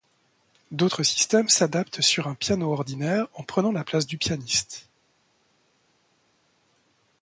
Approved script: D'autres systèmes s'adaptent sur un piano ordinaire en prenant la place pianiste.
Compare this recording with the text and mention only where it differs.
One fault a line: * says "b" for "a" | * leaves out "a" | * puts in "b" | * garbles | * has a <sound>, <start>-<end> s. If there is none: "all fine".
* puts in "du"